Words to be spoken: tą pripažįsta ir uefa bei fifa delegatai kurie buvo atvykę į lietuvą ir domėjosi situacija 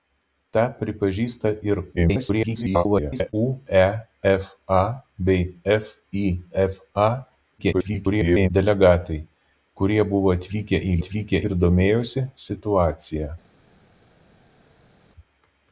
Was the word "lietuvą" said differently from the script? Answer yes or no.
yes